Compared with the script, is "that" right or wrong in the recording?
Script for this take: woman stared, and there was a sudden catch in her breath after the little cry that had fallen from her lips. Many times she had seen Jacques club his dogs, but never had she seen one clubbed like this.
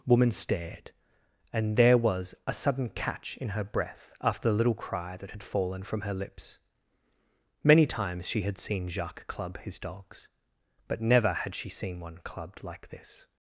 right